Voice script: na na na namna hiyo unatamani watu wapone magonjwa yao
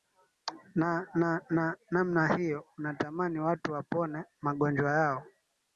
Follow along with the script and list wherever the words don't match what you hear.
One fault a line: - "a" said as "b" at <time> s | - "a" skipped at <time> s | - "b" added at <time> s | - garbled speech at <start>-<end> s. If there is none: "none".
none